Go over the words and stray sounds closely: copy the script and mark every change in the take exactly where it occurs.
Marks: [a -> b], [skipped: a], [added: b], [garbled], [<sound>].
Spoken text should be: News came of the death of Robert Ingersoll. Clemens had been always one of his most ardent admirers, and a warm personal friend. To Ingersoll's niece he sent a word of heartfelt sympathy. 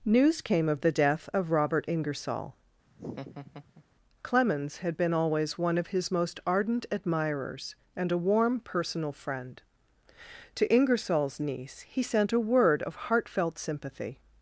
News came of the death of Robert Ingersoll. [laugh] Clemens had been always one of his most ardent admirers, and a warm personal friend. To Ingersoll's niece he sent a word of heartfelt sympathy.